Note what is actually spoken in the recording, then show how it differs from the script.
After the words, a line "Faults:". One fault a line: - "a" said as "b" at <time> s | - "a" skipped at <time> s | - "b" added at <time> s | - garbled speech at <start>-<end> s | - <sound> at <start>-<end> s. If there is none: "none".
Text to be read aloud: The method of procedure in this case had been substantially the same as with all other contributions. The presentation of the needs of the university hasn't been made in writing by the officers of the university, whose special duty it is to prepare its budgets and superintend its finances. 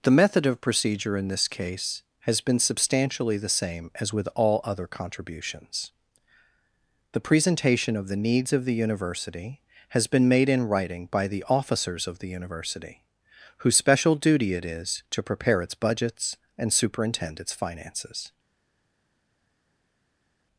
The method of procedure in this case has been substantially the same as with all other contributions. The presentation of the needs of the university has been made in writing by the officers of the university, whose special duty it is to prepare its budgets and superintend its finances.
Faults:
- "had" said as "has" at 2.2 s
- "hasn't" said as "has" at 9.9 s